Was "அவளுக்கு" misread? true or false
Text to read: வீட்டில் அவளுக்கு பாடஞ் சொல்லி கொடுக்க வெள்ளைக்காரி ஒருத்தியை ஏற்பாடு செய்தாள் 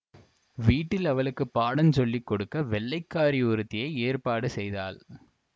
false